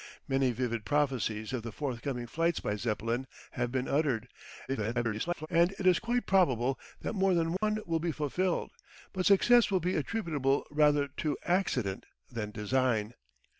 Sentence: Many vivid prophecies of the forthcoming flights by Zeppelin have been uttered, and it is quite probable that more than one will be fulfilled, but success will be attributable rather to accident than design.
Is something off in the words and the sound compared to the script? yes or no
yes